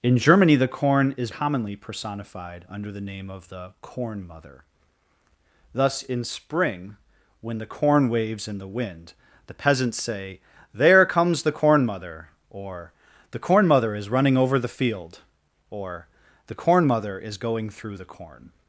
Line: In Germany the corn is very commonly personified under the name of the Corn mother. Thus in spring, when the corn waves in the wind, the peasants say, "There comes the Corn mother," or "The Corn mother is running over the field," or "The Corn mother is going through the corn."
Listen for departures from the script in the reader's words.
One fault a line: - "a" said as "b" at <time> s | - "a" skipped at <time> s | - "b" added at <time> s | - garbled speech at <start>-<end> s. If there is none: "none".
- "very" skipped at 1.3 s